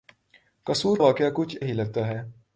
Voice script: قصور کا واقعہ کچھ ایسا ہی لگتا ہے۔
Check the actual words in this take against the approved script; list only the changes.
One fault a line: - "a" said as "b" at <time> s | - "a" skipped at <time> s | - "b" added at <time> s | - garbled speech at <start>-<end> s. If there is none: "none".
- "کا" skipped at 1.0 s
- "ایسا" skipped at 1.6 s